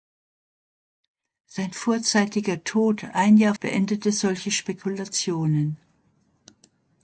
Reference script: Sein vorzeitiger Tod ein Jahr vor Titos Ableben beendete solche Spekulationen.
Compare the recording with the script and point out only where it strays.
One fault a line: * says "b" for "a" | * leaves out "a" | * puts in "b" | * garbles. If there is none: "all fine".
* leaves out "vor Titos Ableben"